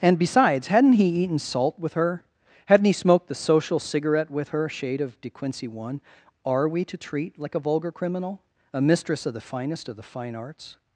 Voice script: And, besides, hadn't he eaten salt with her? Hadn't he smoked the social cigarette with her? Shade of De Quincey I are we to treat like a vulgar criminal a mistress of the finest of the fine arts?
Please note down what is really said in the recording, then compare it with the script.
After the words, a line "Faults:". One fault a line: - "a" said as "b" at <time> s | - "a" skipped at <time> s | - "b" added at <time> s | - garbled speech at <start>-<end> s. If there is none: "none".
And, besides, hadn't he eaten salt with her? Hadn't he smoked the social cigarette with her? Shade of De Quincey one are we to treat like a vulgar criminal a mistress of the finest of the fine arts?
Faults:
- "I" said as "one" at 5.7 s